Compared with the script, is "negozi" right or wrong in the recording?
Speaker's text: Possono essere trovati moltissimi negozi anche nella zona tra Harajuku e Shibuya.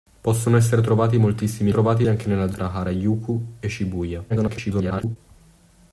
wrong